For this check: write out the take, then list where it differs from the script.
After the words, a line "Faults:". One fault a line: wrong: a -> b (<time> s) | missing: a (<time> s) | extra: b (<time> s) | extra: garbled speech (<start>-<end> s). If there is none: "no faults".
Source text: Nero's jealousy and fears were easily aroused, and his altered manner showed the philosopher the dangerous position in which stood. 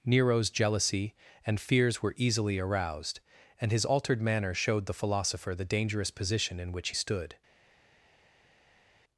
Nero's jealousy and fears were easily aroused, and his altered manner showed the philosopher the dangerous position in which stood.
Faults:
no faults